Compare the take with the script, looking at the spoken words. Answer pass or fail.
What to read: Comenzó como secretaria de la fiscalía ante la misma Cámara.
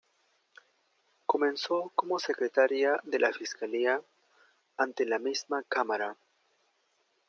pass